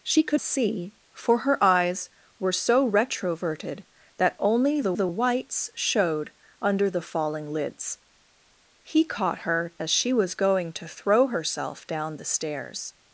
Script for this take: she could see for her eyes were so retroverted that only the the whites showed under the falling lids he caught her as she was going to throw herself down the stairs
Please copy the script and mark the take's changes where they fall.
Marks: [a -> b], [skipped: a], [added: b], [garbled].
she could see for her eyes were so retroverted that only the the whites showed under the falling lids he caught her as she was going to throw herself down the stairs